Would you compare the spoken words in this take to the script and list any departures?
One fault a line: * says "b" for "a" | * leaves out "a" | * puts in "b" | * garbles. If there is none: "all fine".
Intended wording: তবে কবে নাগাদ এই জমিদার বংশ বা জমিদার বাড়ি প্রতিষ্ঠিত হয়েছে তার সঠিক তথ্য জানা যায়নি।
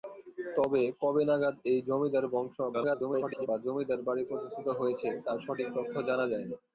* garbles